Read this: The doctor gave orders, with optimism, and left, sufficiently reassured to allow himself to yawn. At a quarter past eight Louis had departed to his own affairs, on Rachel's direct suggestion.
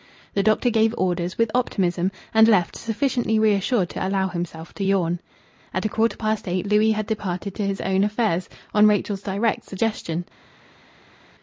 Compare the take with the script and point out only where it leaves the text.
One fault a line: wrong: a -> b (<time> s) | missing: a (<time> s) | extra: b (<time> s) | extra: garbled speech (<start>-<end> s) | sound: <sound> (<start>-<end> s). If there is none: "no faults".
no faults